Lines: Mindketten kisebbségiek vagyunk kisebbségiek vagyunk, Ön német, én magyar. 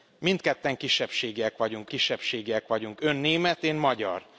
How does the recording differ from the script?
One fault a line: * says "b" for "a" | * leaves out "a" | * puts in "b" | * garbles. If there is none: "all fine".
all fine